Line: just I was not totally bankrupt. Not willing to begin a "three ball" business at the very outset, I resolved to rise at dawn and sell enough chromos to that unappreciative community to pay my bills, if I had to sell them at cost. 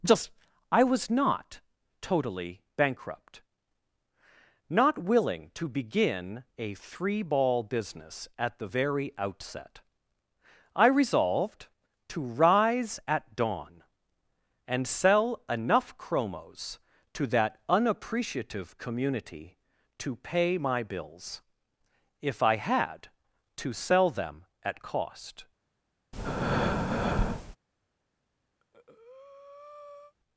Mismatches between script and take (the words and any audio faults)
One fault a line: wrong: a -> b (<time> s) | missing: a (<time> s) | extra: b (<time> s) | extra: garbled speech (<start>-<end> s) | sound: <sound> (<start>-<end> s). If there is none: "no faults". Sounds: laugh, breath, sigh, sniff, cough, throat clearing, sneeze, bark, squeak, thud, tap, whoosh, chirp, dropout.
sound: breath (26.1-27.6 s)
sound: breath (28.6-30.1 s)